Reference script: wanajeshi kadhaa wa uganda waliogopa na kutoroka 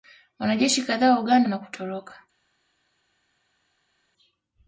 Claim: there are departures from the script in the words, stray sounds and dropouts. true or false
true